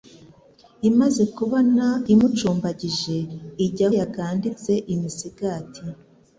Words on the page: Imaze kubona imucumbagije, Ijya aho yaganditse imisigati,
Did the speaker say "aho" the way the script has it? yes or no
no